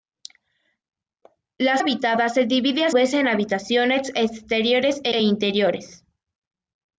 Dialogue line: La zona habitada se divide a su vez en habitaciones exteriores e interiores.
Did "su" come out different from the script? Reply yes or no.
yes